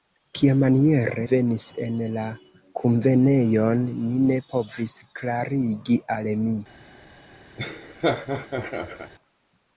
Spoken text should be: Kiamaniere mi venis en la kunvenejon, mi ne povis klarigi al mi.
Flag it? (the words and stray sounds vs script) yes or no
yes